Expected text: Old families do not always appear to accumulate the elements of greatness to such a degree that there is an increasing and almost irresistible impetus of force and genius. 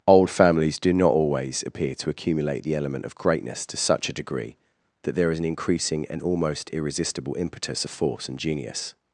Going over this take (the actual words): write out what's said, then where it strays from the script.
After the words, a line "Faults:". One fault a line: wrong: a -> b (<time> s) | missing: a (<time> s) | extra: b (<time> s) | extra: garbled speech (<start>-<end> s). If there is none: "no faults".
Old families do not always appear to accumulate the element of greatness to such a degree that there is an increasing and almost irresistible impetus of force and genius.
Faults:
wrong: elements -> element (2.8 s)